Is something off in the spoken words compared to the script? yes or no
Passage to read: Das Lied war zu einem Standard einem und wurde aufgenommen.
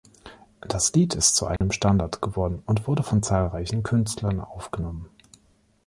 yes